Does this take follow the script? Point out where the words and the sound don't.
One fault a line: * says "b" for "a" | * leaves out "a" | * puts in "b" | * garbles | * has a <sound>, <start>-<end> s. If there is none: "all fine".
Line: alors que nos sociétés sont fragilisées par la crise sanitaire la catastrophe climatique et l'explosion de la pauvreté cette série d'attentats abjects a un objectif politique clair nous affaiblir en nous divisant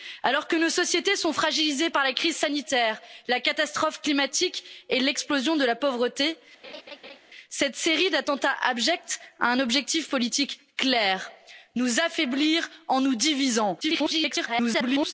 * has a laugh, 6.6-7.2 s
* garbles